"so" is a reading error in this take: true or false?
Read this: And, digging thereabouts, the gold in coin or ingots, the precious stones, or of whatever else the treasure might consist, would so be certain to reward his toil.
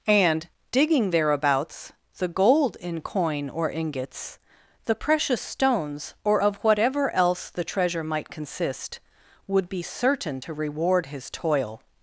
true